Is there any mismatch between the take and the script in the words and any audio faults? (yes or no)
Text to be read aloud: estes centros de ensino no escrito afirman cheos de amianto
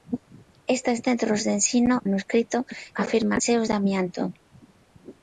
no